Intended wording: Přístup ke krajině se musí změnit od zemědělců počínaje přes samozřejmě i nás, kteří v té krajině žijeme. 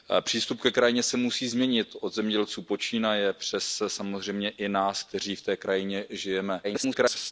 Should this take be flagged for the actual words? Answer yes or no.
yes